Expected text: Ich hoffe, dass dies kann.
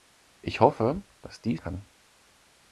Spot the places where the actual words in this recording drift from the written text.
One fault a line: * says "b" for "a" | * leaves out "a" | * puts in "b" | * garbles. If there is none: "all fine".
all fine